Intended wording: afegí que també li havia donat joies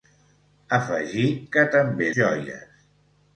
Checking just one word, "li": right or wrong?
wrong